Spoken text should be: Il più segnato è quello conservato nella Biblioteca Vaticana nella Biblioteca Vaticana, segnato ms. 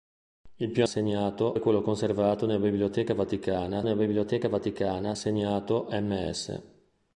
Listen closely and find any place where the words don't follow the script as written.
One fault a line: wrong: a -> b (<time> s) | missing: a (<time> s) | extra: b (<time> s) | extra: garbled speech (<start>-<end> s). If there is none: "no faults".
no faults